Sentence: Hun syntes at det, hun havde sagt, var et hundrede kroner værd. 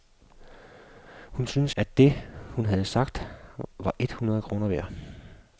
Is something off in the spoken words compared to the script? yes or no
no